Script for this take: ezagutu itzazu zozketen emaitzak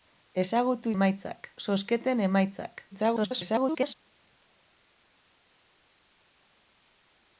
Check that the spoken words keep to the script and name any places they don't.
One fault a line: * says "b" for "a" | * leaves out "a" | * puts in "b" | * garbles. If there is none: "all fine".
* says "emaitzak" for "itzazu"
* garbles